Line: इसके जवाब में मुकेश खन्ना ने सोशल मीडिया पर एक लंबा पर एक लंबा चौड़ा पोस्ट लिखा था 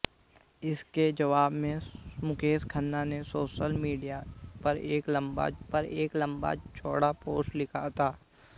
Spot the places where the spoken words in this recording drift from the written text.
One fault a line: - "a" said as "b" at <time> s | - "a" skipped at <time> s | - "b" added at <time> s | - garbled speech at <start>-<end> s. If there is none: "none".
none